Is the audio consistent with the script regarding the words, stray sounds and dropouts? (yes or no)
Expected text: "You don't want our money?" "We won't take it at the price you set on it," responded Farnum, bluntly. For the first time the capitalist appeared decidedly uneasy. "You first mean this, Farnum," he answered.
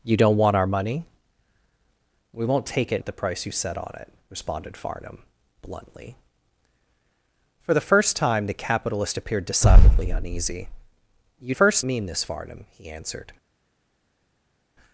yes